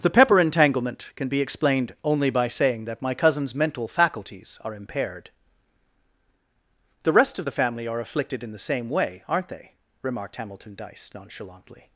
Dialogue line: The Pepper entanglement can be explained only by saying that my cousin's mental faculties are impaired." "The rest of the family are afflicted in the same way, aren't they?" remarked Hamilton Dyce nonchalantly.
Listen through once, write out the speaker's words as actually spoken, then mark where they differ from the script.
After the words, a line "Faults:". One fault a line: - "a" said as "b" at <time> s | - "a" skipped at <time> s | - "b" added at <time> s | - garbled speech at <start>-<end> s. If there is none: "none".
The Pepper entanglement can be explained only by saying that my cousin's mental faculties are impaired." "The rest of the family are afflicted in the same way, aren't they?" remarked Hamilton Dyce nonchalantly.
Faults:
none